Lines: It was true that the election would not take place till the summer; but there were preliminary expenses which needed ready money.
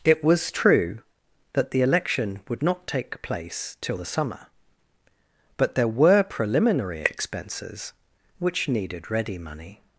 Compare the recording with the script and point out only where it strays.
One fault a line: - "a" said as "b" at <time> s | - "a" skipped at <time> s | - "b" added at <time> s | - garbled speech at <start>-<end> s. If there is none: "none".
none